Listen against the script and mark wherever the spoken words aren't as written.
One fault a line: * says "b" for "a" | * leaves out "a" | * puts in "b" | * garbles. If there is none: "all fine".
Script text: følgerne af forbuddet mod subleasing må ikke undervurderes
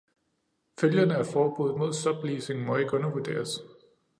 all fine